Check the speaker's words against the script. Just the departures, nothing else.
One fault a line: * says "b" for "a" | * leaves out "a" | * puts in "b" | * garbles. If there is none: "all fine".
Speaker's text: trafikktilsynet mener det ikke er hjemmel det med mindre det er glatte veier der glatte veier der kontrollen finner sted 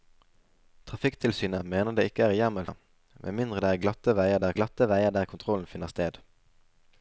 all fine